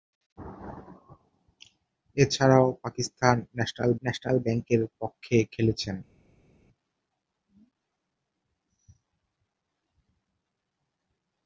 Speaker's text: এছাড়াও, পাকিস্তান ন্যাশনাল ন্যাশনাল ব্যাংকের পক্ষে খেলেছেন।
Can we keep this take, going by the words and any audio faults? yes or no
yes